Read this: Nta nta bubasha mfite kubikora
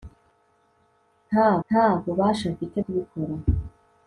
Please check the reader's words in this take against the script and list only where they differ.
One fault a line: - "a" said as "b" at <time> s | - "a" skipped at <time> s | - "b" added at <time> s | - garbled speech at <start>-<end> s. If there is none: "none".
none